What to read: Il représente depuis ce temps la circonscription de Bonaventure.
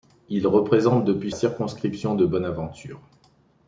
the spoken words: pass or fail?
fail